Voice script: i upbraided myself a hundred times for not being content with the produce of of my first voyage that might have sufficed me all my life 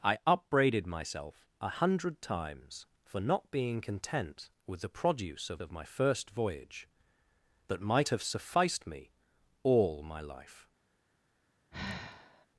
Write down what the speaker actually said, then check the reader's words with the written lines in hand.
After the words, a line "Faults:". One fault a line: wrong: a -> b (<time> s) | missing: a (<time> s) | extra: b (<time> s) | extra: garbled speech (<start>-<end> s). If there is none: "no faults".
i upbraided myself a hundred times for not being content with the produce of of my first voyage that might have sufficed me all my life
Faults:
no faults